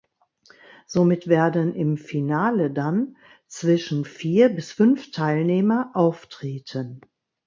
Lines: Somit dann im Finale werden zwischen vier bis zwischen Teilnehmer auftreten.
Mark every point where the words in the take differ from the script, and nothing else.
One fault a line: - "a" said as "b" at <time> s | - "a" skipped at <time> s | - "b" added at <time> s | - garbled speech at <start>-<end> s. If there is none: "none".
- "dann" said as "werden" at 1.3 s
- "werden" said as "dann" at 2.7 s
- "zwischen" said as "fünf" at 4.7 s